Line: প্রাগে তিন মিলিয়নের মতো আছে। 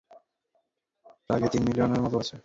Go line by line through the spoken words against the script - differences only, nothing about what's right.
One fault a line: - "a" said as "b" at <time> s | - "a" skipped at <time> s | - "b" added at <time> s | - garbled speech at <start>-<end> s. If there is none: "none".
none